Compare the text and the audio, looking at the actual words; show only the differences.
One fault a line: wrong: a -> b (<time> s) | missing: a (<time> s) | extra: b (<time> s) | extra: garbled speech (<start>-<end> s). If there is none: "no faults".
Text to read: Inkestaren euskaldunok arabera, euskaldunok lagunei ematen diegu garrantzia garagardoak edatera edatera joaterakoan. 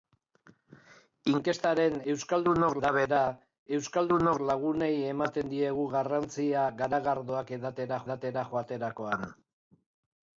no faults